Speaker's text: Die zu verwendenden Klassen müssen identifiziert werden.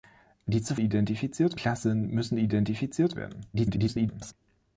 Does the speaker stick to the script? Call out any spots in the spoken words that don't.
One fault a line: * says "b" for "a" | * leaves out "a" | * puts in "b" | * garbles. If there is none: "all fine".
* says "identifiziert" for "verwendenden"
* garbles